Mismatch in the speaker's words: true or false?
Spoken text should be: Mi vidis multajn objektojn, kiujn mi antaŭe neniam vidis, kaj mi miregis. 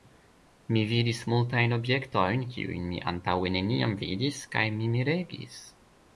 false